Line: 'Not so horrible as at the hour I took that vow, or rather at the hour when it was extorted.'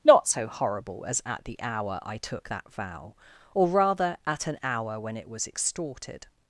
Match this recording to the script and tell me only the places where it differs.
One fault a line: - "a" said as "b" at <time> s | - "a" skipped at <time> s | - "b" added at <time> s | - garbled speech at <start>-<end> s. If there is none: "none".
- "the" said as "an" at 4.5 s